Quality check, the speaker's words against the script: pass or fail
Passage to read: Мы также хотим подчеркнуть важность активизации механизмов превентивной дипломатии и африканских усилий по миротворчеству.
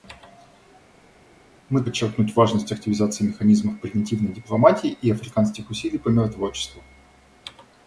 fail